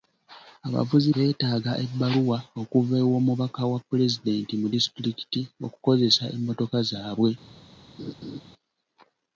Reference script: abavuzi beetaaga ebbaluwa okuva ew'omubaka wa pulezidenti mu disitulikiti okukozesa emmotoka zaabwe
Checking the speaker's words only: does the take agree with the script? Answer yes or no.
yes